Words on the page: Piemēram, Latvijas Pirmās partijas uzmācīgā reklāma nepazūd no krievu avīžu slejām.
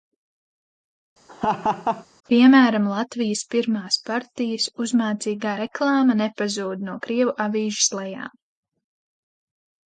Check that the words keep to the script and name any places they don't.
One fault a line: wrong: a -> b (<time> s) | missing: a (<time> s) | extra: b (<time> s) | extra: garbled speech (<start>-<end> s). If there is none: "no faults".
no faults